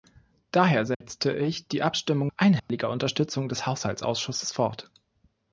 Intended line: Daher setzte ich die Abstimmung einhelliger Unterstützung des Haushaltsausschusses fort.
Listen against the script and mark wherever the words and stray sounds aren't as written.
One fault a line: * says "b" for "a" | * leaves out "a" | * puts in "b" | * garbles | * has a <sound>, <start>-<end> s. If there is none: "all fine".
* has a dropout, 0.9-1.0 s
* has a dropout, 2.6-2.7 s